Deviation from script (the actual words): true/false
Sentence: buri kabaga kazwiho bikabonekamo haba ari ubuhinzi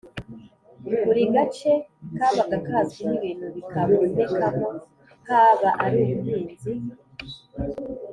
true